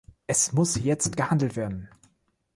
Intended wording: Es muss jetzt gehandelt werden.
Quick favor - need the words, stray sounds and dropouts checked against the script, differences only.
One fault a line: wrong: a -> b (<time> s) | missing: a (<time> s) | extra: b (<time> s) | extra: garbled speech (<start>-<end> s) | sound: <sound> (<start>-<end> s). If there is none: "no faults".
no faults